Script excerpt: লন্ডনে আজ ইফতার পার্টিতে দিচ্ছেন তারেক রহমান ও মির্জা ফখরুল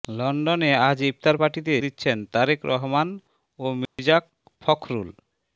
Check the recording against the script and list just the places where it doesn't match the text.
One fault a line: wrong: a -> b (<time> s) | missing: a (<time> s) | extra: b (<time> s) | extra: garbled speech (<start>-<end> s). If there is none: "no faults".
no faults